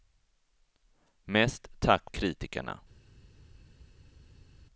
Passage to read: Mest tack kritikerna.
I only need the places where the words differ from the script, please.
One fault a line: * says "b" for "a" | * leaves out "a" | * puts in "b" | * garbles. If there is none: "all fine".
all fine